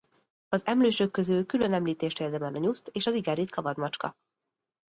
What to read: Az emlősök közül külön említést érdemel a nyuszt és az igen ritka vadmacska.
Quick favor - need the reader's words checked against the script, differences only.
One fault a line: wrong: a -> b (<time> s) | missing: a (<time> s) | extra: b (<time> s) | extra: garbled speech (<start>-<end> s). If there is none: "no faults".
no faults